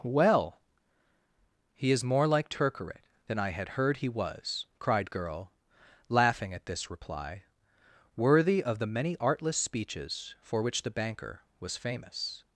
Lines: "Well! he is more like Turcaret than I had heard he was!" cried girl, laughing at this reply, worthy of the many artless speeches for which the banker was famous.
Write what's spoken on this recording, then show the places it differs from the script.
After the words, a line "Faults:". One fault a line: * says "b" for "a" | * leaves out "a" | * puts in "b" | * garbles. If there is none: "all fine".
"Well! he is more like Turcaret than I had heard he was!" cried girl, laughing at this reply, worthy of the many artless speeches for which the banker was famous.
Faults:
all fine